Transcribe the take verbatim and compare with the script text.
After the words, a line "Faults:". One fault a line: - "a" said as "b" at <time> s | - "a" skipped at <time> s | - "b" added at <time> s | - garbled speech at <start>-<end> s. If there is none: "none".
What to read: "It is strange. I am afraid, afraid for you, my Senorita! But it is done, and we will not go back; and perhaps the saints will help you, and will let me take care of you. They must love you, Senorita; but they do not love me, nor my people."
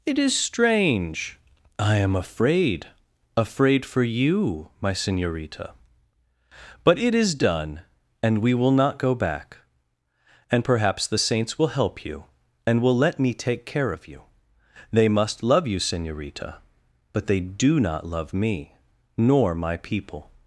"It is strange. I am afraid, afraid for you, my Senorita! But it is done, and we will not go back; and perhaps the saints will help you, and will let me take care of you. They must love you, Senorita; but they do not love me, nor my people."
Faults:
none